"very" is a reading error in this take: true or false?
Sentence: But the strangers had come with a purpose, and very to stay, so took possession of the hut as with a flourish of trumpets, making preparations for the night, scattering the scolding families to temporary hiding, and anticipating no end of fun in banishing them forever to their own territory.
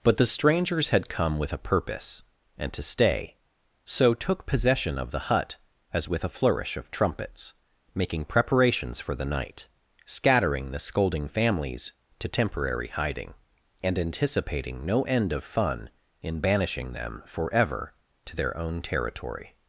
true